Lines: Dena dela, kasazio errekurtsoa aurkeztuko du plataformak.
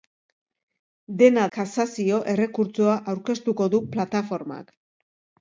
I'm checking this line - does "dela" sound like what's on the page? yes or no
no